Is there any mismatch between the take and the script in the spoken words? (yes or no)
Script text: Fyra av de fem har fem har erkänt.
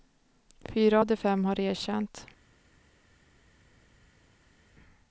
yes